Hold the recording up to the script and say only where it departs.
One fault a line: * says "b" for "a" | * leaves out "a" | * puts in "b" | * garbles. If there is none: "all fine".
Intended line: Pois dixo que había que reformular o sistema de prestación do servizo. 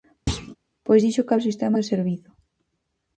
* leaves out "había que reformular"
* leaves out "de prestación"